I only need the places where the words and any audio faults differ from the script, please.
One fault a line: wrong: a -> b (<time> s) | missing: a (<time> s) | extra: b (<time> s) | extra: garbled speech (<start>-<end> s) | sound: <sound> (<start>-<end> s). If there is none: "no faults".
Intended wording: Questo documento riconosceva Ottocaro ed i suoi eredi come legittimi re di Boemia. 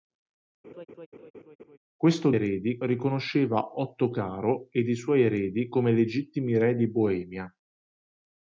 sound: laugh (0.6-1.8 s)
wrong: documento -> eredi (2.3 s)